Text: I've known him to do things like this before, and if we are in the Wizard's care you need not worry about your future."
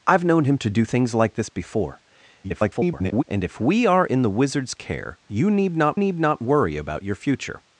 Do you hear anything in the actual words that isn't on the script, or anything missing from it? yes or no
yes